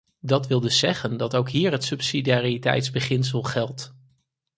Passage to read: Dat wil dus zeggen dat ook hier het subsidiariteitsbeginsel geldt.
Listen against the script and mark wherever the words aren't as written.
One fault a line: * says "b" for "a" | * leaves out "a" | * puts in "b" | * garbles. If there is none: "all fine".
all fine